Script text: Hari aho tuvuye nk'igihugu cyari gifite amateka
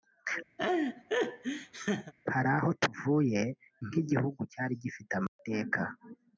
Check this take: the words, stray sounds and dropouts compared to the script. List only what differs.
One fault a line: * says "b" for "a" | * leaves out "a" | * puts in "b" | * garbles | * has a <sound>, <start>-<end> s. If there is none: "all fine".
* has a laugh, 0.6-2.1 s
* has a dropout, 5.3-5.4 s